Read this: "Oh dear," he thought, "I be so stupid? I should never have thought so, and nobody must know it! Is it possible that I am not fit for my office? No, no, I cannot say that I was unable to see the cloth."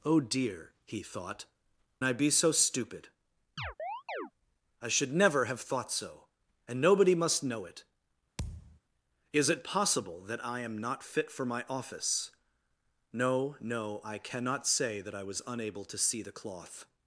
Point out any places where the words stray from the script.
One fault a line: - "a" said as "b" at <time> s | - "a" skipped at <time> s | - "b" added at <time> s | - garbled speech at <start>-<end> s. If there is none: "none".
none